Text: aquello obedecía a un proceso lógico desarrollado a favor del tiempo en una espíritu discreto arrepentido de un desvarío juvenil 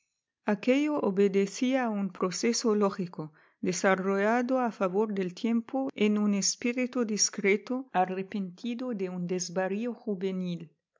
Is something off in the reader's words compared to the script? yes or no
yes